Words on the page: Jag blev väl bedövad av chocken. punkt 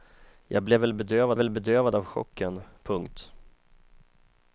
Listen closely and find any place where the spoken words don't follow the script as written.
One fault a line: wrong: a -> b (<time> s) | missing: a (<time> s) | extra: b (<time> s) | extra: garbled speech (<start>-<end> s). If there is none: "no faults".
extra: väl bedövad (1.4 s)